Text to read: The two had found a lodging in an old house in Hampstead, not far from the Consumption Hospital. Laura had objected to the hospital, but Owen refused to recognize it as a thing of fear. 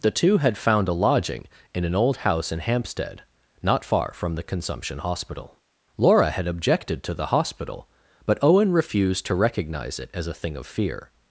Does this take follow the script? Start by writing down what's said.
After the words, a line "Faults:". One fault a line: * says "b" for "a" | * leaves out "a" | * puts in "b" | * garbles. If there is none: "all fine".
The two had found a lodging in an old house in Hampstead, not far from the Consumption Hospital. Laura had objected to the hospital, but Owen refused to recognize it as a thing of fear.
Faults:
all fine